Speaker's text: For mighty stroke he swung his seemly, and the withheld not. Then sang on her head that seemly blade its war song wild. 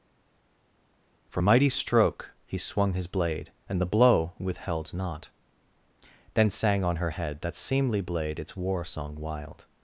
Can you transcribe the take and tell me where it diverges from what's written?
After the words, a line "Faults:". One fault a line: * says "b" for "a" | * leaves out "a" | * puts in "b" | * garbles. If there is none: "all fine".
For mighty stroke he swung his blade, and the blow withheld not. Then sang on her head that seemly blade its war song wild.
Faults:
* says "blade" for "seemly"
* puts in "blow"